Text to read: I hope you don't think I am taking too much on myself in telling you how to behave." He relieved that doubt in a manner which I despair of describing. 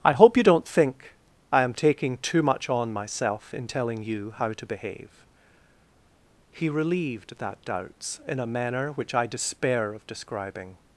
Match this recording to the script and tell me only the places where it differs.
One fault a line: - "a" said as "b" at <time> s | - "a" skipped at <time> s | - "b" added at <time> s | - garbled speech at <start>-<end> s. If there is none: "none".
- "doubt" said as "doubts" at 7.6 s